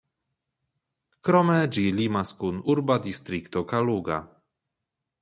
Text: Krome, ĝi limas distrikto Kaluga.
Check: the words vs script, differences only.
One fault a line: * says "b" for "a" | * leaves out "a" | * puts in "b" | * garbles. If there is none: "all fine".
* puts in "kun urba"